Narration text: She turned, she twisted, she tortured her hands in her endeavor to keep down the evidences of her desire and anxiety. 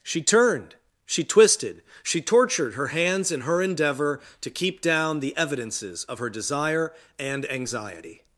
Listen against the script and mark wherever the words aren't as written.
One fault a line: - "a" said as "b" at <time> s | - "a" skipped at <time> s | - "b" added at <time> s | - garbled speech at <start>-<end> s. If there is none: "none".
none